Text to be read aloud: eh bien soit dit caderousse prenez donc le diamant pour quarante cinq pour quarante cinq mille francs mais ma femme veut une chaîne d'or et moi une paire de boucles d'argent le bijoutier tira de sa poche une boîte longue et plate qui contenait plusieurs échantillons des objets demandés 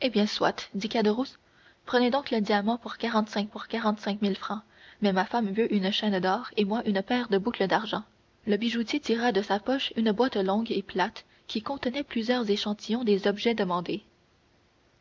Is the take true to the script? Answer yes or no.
yes